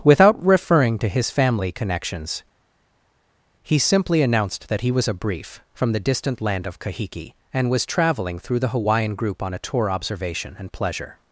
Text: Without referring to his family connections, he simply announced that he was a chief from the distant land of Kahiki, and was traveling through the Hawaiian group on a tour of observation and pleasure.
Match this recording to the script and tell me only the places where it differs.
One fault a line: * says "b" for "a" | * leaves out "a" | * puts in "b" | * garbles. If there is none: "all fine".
* says "brief" for "chief"
* leaves out "of"